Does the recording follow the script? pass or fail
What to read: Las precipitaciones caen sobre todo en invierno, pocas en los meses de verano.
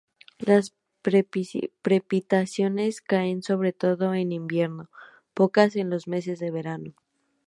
pass